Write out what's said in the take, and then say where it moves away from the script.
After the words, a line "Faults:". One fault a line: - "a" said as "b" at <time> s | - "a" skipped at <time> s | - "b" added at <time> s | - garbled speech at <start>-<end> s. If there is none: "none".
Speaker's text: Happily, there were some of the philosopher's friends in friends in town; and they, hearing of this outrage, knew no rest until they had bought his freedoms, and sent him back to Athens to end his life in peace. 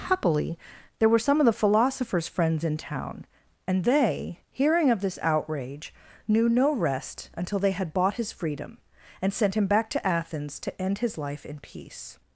Happily, there were some of the philosopher's friends in town; and they, hearing of this outrage, knew no rest until they had bought his freedom, and sent him back to Athens to end his life in peace.
Faults:
- "friends in" skipped at 2.8 s
- "freedoms" said as "freedom" at 8.3 s